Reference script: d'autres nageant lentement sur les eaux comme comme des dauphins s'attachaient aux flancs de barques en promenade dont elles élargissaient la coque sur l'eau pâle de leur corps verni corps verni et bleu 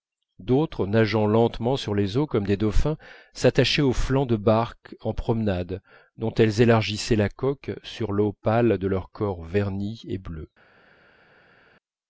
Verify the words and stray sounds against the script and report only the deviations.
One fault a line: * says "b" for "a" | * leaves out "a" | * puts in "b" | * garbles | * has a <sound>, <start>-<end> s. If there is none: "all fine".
* leaves out "comme"
* leaves out "corps verni"